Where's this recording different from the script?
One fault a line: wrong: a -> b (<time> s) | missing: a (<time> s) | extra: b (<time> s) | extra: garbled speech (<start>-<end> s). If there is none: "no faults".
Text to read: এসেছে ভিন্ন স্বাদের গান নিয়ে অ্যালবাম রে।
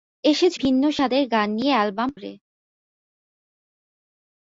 no faults